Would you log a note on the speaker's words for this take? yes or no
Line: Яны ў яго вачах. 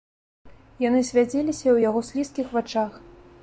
yes